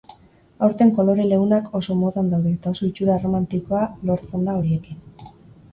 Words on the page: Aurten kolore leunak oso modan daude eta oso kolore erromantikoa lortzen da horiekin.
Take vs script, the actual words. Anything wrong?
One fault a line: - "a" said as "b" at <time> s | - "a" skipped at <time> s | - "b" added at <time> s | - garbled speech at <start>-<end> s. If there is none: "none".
- "kolore" said as "itxura" at 2.9 s